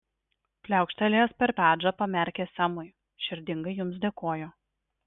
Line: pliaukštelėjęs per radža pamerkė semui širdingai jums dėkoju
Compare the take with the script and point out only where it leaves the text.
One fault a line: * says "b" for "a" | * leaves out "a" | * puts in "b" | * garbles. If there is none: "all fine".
all fine